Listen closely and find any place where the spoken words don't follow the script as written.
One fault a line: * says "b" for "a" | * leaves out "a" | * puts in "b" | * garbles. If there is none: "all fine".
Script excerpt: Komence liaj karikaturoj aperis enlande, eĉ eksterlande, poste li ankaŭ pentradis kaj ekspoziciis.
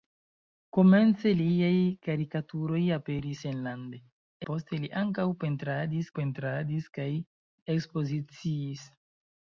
* leaves out "eĉ eksterlande"
* puts in "pentradis"